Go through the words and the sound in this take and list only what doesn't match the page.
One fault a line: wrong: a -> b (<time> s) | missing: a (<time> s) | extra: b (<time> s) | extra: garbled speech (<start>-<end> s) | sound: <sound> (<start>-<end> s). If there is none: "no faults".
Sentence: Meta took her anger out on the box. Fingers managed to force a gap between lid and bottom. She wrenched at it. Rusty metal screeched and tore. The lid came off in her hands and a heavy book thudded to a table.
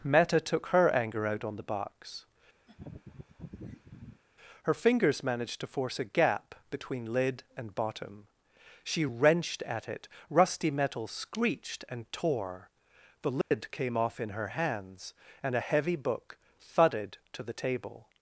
sound: laugh (2.7-4.2 s)
extra: Her (4.6 s)
sound: dropout (13.4-13.5 s)
wrong: a -> the (17.4 s)